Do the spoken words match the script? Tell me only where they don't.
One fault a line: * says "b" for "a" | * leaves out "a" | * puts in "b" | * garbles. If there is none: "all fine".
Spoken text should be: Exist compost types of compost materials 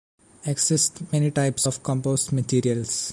* says "many" for "compost"